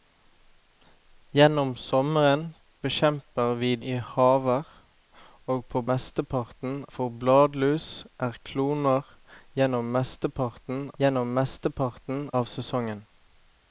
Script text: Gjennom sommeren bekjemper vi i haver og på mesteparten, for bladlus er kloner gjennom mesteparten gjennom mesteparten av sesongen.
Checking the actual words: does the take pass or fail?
pass